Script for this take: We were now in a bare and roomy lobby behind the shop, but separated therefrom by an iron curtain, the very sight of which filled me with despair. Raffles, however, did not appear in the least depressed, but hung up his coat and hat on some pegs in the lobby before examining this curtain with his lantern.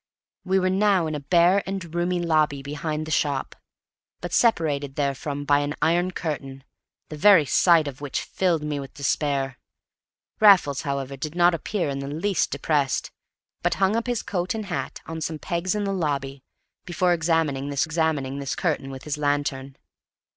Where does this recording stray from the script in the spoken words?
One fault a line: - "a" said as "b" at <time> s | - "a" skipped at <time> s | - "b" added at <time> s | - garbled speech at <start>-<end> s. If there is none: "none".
- "examining this" added at 17.8 s